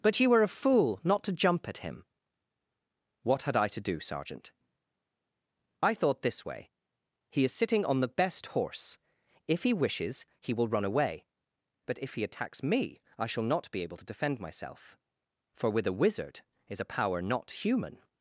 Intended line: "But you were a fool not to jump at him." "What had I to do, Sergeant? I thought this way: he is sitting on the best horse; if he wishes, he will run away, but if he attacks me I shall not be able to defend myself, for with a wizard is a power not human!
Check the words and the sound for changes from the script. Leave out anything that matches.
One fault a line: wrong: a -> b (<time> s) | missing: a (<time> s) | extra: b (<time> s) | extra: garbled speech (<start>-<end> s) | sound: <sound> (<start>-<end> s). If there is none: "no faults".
no faults